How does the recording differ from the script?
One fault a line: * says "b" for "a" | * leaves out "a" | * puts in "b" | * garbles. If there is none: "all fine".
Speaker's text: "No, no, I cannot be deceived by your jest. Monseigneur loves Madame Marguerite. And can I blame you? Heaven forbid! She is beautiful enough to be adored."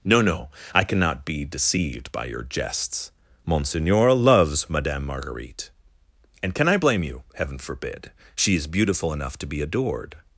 * says "jests" for "jest"